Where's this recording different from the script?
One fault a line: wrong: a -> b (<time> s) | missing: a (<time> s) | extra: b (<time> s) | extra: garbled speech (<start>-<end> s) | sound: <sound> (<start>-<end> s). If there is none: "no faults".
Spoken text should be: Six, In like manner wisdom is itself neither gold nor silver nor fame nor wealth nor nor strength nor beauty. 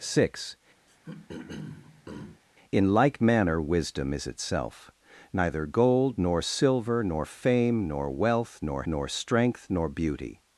sound: throat clearing (0.9-2.4 s)